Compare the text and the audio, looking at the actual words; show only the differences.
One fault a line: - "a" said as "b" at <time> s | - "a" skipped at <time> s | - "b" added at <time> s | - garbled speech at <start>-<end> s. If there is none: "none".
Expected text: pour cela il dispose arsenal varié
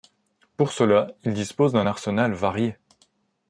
- "d'un" added at 1.7 s